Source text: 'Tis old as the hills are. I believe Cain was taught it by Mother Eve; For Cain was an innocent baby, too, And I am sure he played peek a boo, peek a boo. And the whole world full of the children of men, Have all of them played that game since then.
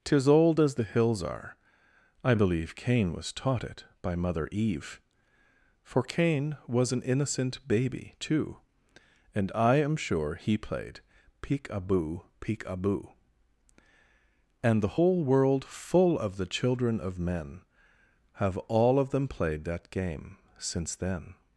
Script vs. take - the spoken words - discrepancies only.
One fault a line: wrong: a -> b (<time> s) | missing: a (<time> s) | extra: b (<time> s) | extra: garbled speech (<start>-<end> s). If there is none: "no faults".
no faults